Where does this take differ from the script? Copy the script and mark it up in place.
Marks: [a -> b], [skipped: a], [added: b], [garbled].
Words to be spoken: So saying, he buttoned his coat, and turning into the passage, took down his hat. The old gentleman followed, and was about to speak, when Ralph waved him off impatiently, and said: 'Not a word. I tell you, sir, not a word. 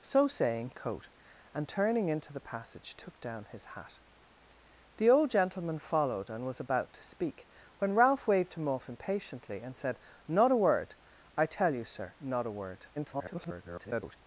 So saying, [skipped: he buttoned his] coat, and turning into the passage, took down his hat. The old gentleman followed, and was about to speak, when Ralph waved him off impatiently, and said: 'Not a word. I tell you, sir, not a word. [garbled]